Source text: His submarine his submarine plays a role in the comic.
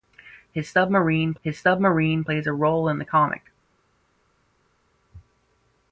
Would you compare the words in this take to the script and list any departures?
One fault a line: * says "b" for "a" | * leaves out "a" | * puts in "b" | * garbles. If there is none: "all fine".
all fine